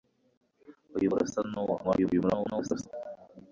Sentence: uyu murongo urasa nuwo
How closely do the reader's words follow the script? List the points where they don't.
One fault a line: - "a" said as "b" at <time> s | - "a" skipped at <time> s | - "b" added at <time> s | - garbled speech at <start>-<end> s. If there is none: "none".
- "murongo" skipped at 1.1 s
- garbled speech at 1.8-2.9 s